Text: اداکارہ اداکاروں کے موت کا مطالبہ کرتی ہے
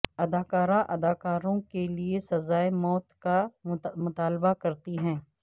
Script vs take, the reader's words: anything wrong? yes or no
yes